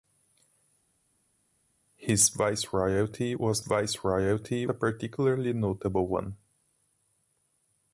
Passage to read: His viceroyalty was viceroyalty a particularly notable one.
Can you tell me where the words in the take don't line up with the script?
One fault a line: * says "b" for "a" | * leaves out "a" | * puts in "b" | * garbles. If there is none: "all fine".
all fine